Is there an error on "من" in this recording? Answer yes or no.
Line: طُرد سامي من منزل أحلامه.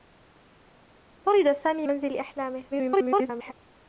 yes